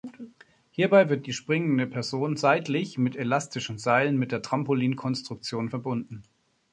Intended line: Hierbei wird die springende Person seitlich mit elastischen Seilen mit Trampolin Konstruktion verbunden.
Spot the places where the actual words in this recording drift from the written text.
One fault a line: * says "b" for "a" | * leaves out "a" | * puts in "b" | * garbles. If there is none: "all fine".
* puts in "der"